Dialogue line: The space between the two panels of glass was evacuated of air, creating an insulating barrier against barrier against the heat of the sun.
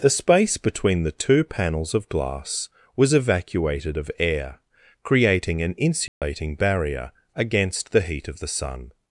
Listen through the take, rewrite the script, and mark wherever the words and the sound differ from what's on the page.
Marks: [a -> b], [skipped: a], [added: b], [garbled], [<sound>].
The space between the two panels of glass was evacuated of air, creating an insulating [dropout] barrier against [skipped: barrier against] the heat of the sun.